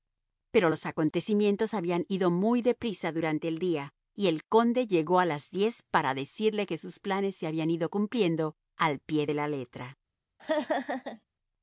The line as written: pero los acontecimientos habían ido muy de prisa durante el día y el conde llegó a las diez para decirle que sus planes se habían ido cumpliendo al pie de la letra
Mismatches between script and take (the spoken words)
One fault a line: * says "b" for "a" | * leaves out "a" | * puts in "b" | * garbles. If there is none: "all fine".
all fine